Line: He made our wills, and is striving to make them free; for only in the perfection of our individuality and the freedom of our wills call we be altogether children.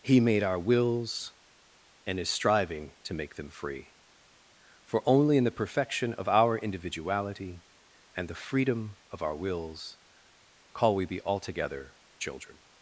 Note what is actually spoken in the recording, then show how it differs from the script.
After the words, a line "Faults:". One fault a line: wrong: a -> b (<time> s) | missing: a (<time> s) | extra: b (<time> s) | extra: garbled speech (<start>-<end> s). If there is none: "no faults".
He made our wills, and is striving to make them free; for only in the perfection of our individuality and the freedom of our wills call we be altogether children.
Faults:
no faults